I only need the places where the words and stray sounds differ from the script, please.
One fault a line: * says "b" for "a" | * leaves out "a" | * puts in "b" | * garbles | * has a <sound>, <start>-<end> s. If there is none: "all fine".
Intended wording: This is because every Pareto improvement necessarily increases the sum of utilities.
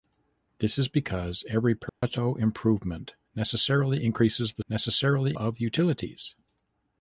* has a dropout, 1.9-2.0 s
* says "necessarily" for "sum"